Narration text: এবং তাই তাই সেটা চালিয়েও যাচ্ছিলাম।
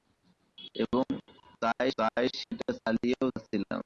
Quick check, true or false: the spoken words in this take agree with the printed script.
true